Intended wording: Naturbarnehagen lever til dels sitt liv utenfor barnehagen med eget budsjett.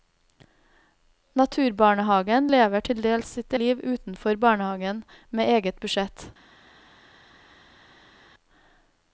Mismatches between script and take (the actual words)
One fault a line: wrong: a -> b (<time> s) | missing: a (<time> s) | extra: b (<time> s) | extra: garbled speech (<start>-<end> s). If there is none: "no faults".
no faults